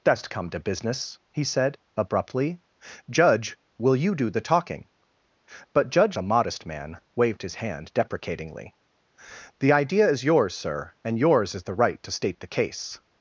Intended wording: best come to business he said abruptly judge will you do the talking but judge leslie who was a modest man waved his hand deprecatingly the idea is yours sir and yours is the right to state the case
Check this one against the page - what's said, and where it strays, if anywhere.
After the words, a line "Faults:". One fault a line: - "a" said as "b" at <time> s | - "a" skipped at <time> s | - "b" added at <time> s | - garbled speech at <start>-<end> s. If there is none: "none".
best come to business he said abruptly judge will you do the talking but judge a modest man waved his hand deprecatingly the idea is yours sir and yours is the right to state the case
Faults:
- "leslie who was" skipped at 6.2 s